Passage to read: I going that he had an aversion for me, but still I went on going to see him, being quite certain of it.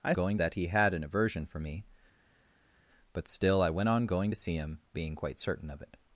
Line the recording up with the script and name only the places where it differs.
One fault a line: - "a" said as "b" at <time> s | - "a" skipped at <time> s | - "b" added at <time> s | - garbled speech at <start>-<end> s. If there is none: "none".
none